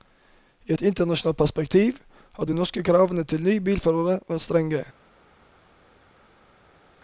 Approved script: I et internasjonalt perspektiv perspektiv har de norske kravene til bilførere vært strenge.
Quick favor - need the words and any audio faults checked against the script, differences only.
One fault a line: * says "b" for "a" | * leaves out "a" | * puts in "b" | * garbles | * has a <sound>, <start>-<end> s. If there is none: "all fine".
* leaves out "perspektiv"
* puts in "nye"